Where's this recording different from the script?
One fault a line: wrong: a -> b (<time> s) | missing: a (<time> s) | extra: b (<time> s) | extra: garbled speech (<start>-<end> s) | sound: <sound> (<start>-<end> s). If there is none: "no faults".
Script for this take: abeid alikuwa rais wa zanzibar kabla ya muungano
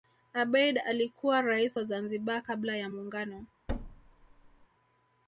sound: thud (3.7-4.7 s)